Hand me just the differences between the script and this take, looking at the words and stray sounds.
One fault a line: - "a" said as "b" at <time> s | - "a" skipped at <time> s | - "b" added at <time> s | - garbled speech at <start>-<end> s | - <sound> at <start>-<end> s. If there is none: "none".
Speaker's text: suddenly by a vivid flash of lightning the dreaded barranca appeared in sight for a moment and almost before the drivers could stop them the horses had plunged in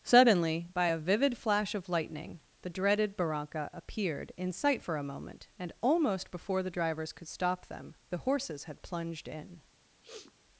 - sniff at 10.0-10.3 s